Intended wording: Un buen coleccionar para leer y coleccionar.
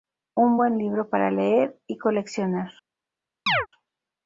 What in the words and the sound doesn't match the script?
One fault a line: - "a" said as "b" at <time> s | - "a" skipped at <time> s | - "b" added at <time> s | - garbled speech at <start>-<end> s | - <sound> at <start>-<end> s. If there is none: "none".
- "coleccionar" said as "libro" at 0.8 s
- chirp at 3.5-3.7 s